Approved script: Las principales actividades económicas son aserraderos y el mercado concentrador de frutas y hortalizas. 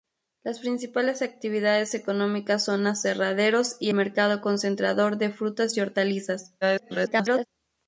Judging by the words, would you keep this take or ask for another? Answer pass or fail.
fail